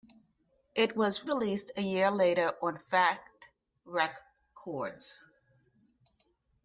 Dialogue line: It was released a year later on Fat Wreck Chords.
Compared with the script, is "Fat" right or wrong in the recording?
right